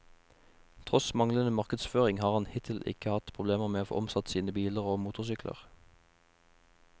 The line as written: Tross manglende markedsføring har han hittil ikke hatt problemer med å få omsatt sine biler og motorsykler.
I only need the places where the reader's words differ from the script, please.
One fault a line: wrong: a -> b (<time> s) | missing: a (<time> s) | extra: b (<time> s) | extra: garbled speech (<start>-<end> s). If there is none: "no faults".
no faults